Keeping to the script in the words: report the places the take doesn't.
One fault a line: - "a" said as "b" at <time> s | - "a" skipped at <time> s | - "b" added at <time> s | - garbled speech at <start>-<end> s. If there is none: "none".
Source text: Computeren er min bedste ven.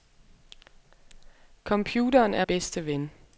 - "min" skipped at 2.5 s